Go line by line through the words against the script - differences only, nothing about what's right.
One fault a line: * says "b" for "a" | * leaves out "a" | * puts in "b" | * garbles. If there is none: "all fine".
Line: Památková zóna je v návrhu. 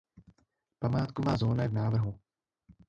all fine